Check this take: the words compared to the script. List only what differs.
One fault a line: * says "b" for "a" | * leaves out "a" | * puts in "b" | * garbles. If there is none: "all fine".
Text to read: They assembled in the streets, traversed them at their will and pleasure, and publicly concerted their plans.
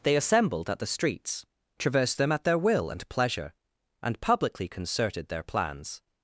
* says "at" for "in"